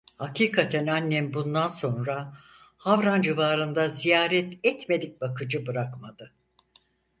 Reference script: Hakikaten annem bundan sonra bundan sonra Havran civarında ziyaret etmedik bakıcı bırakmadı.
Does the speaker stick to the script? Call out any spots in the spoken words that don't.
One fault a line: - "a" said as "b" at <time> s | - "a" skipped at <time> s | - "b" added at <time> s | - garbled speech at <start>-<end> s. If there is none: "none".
- "bundan sonra" skipped at 2.4 s